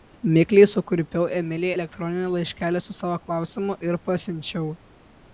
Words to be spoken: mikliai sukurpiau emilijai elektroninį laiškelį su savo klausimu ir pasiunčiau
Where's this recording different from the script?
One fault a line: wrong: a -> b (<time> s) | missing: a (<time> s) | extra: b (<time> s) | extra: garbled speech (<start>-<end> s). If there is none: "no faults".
no faults